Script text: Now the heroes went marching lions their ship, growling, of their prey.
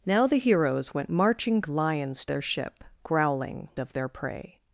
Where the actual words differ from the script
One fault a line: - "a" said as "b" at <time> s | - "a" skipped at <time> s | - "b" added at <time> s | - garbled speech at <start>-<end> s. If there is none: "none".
none